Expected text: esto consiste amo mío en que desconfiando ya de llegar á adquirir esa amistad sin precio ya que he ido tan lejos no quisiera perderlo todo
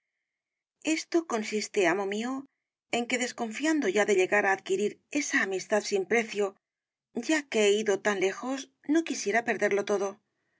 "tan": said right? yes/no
yes